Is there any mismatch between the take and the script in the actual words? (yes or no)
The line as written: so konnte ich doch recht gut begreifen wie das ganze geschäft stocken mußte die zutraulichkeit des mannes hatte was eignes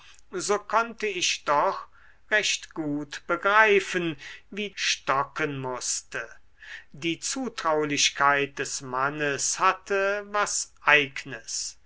yes